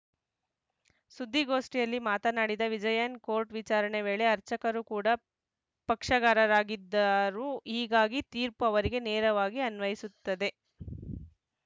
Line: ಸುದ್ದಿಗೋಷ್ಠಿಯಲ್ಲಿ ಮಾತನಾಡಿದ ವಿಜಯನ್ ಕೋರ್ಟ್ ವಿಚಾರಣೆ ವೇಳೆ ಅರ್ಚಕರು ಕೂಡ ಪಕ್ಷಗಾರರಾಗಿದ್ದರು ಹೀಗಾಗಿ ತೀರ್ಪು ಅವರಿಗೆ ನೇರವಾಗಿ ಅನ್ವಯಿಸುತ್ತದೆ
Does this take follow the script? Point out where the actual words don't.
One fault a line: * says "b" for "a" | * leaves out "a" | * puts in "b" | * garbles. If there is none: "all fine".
all fine